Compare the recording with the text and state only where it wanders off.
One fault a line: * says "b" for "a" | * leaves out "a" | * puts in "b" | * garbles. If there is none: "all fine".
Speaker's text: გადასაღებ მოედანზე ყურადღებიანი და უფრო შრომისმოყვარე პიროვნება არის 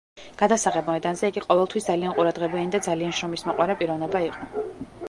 * puts in "იგი ყოველთვის ძალიან"
* says "ძალიან" for "უფრო"
* says "იყო" for "არის"